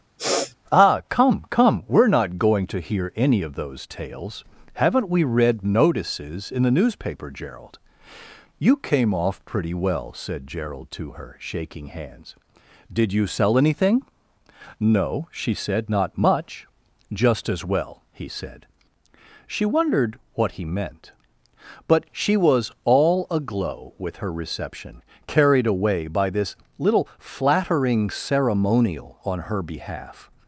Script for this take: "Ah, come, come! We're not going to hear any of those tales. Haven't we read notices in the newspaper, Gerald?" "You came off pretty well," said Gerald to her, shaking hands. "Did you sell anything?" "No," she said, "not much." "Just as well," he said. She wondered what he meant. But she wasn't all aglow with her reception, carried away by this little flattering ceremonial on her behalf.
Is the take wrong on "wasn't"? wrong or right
wrong